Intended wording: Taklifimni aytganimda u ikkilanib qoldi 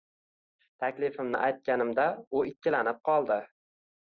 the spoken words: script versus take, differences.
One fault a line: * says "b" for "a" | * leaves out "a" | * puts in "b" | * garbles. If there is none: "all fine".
all fine